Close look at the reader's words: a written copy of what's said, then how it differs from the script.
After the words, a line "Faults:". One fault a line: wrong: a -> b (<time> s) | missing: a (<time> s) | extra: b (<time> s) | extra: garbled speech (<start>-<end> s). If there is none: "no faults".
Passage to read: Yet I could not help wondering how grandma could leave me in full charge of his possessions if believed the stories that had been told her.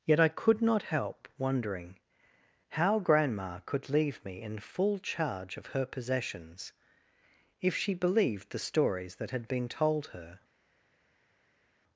Yet I could not help wondering how grandma could leave me in full charge of her possessions if she believed the stories that had been told her.
Faults:
wrong: his -> her (5.7 s)
extra: she (7.7 s)